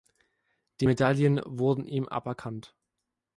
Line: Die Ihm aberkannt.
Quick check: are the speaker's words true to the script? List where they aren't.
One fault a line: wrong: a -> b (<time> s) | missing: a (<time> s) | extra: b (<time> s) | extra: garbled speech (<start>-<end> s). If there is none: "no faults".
extra: Medaillen wurden (0.8 s)